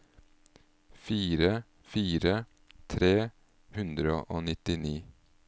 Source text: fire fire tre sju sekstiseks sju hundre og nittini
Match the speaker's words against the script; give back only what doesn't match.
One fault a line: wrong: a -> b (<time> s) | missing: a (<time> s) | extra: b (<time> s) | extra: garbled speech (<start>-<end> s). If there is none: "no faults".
missing: sju sekstiseks sju (3.1 s)